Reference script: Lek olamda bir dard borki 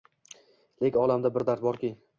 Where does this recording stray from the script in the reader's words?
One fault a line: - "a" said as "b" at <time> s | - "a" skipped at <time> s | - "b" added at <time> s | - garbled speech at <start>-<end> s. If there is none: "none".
none